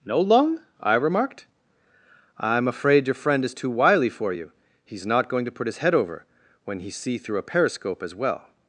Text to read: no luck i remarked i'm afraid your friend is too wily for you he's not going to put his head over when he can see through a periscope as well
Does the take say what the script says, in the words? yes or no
no